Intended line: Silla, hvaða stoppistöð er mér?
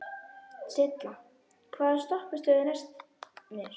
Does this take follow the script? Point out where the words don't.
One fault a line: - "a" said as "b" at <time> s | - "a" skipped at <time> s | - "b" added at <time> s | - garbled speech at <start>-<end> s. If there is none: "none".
- "næst" added at 2.7 s